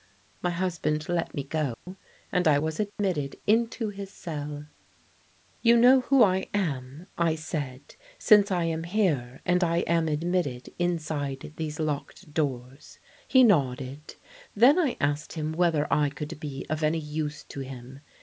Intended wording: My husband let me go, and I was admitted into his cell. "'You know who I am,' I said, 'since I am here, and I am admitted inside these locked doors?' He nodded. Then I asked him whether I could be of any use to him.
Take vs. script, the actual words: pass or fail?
pass